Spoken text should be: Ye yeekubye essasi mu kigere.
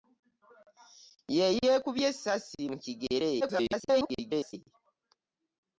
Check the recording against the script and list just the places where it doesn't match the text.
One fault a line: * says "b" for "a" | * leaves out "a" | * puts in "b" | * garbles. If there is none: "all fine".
* garbles